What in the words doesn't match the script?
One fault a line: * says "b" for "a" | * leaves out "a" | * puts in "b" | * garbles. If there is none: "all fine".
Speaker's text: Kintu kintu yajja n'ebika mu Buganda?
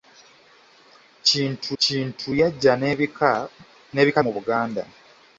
all fine